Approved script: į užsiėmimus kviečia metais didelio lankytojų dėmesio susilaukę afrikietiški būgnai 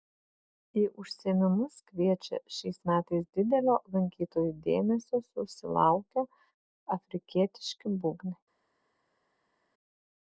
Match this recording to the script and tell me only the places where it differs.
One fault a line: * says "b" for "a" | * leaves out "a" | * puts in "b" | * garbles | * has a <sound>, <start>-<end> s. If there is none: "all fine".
* puts in "šiais"